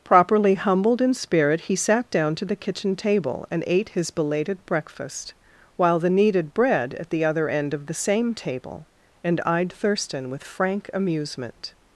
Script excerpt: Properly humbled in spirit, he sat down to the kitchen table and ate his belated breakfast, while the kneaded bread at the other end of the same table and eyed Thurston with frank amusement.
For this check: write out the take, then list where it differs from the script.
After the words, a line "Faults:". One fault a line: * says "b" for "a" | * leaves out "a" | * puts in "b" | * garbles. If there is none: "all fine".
Properly humbled in spirit, he sat down to the kitchen table and ate his belated breakfast, while the kneaded bread at the other end of the same table and eyed Thurston with frank amusement.
Faults:
all fine